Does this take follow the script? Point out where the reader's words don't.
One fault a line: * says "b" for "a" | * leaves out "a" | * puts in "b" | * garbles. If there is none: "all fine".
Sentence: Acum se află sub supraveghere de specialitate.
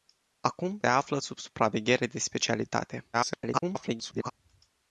* leaves out "se"
* garbles